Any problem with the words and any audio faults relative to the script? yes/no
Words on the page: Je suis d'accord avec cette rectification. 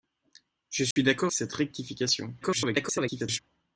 yes